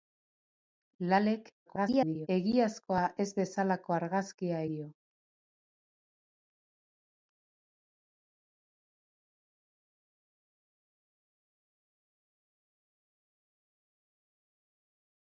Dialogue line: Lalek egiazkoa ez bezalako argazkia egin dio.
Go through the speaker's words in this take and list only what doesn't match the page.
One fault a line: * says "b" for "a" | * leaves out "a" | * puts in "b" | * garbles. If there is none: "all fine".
* garbles
* leaves out "egin"